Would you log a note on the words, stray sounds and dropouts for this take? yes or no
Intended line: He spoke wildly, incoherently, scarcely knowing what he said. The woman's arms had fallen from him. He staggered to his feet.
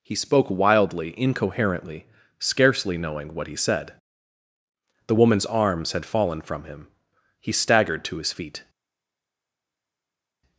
no